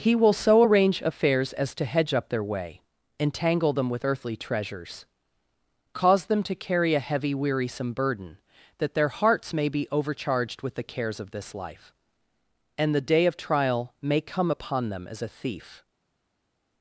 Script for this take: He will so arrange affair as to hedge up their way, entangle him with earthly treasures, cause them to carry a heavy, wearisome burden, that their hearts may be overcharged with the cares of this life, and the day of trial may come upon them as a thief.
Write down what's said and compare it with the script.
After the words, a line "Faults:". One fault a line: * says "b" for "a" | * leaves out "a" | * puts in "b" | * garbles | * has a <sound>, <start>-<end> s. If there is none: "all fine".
He will so arrange affairs as to hedge up their way, entangle them with earthly treasures, cause them to carry a heavy, wearisome burden, that their hearts may be overcharged with the cares of this life, and the day of trial may come upon them as a thief.
Faults:
* says "affairs" for "affair"
* says "them" for "him"